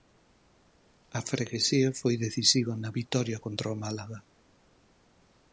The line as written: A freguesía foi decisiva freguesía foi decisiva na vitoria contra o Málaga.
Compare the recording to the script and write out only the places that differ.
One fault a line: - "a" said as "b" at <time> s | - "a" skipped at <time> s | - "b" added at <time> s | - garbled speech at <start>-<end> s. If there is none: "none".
- "freguesía foi decisiva" skipped at 2.7 s